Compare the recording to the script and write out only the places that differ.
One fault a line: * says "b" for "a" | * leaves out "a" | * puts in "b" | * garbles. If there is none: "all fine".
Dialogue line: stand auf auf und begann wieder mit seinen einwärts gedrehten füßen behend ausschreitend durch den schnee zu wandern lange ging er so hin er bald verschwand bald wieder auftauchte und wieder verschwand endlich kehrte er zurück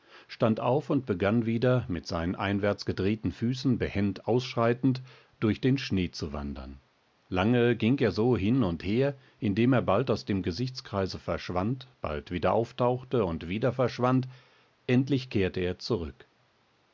* leaves out "auf"
* puts in "und her indem"
* puts in "aus dem gesichtskreise"